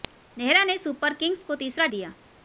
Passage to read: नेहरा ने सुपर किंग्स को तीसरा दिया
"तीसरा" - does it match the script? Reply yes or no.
yes